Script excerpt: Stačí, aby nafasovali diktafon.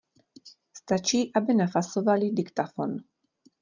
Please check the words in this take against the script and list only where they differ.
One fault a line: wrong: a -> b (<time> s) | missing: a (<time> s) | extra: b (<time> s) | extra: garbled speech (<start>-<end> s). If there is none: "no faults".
no faults